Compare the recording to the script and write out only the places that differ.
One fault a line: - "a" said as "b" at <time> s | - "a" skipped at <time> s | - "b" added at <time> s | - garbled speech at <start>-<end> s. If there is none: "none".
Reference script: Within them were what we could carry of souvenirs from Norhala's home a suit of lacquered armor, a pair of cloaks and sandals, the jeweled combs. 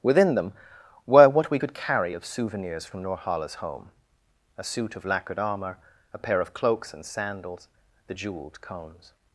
- "combs" said as "cones" at 8.6 s